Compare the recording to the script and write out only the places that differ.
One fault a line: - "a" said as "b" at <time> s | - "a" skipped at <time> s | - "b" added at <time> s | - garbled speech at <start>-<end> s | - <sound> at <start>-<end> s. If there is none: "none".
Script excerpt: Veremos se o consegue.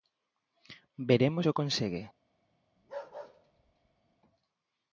- bark at 2.8-4.2 s